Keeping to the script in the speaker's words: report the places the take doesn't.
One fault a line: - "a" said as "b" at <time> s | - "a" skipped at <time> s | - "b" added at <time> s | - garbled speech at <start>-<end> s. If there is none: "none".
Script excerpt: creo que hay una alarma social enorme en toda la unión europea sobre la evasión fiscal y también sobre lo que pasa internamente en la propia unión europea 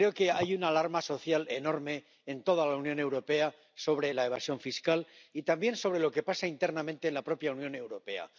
none